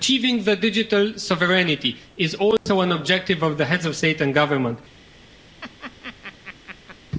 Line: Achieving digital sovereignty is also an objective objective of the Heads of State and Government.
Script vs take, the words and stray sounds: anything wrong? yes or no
yes